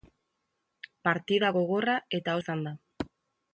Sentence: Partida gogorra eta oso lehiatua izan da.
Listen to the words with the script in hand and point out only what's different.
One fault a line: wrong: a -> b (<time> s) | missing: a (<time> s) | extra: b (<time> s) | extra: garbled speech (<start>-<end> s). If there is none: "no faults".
missing: oso lehiatua (2.4 s)